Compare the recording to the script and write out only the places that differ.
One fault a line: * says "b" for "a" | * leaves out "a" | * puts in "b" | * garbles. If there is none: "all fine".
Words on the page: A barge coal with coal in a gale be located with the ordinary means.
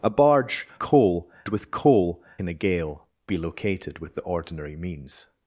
all fine